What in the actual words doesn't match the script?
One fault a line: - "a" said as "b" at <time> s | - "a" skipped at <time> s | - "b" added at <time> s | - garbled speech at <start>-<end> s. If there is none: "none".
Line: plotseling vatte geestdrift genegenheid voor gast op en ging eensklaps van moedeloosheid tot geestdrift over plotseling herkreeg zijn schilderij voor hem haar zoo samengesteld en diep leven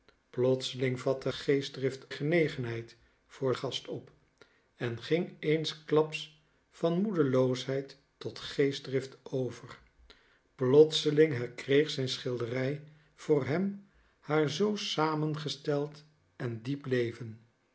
none